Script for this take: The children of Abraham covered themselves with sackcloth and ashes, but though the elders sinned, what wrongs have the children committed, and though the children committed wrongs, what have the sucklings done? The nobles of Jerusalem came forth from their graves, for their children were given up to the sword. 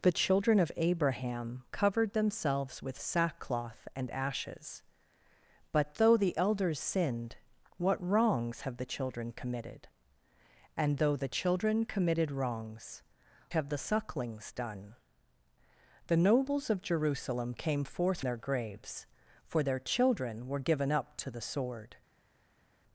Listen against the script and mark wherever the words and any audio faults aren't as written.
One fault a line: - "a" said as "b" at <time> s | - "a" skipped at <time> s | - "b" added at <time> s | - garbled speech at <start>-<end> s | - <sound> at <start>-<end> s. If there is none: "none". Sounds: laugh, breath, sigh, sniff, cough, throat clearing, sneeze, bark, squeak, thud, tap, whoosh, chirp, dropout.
- "what" skipped at 13.0 s
- "from" skipped at 18.2 s